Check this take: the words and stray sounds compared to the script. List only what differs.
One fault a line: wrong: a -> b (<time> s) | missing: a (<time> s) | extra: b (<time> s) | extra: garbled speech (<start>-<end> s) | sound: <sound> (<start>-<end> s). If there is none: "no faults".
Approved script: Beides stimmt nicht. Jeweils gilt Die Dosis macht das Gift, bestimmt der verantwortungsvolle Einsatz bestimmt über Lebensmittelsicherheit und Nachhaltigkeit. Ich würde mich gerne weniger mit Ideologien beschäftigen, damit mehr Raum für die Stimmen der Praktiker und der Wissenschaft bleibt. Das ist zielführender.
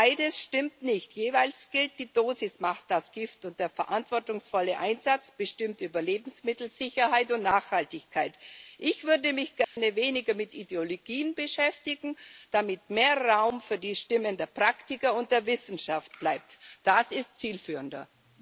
wrong: bestimmt -> und (3.5 s)
sound: dropout (9.6-9.8 s)